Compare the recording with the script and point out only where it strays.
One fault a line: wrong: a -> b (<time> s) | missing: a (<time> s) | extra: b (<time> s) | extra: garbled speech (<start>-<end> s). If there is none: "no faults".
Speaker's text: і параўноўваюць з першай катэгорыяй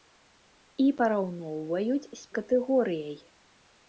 missing: першай (2.2 s)